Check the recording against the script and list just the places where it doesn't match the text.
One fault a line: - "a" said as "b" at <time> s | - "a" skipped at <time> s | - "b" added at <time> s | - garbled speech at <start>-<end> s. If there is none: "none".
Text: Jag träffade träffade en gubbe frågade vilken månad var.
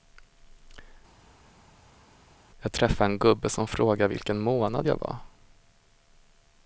- "träffade" skipped at 3.1 s
- "som" added at 3.5 s
- "jag" added at 4.8 s